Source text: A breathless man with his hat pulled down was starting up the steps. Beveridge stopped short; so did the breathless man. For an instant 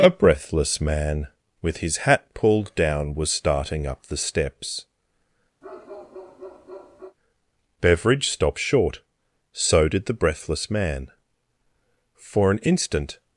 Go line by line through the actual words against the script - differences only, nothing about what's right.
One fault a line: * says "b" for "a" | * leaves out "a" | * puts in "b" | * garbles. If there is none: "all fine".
all fine